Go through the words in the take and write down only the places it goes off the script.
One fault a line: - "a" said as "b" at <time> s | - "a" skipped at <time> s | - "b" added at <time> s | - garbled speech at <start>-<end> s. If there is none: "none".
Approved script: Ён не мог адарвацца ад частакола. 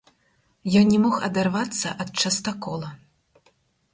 none